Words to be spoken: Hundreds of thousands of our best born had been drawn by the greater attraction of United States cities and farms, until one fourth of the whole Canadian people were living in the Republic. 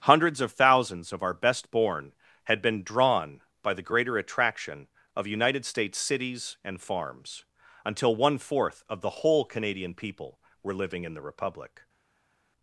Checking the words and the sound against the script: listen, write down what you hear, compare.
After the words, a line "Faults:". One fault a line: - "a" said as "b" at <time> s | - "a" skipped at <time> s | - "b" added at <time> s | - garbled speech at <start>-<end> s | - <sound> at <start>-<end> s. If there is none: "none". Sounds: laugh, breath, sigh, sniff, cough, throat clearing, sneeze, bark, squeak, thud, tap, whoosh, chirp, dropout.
Hundreds of thousands of our best born had been drawn by the greater attraction of United States cities and farms, until one fourth of the whole Canadian people were living in the Republic.
Faults:
none